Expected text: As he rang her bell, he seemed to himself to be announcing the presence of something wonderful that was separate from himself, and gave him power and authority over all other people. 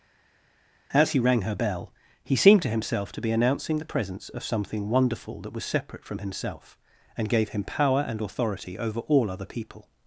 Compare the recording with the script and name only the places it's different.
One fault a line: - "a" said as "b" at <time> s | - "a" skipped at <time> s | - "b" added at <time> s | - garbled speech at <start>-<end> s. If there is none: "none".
none